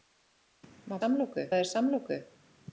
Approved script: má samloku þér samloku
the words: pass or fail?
pass